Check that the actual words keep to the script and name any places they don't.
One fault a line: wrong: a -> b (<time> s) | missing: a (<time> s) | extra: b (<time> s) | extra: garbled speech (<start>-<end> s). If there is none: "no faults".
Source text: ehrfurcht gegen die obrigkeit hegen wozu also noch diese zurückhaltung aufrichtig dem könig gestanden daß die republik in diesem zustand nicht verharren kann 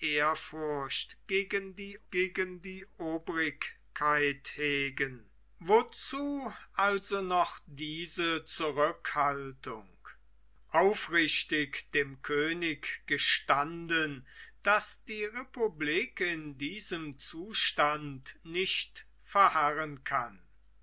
extra: gegen die (2.1 s)